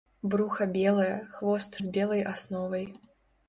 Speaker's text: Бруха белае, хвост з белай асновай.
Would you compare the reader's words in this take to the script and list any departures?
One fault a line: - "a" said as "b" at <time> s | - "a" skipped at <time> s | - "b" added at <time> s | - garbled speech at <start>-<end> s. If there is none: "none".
none